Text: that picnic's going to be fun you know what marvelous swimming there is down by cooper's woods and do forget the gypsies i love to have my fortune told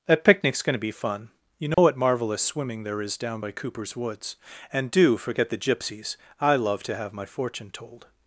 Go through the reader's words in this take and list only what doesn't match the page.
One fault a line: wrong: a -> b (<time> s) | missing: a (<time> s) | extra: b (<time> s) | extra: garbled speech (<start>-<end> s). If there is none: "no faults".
no faults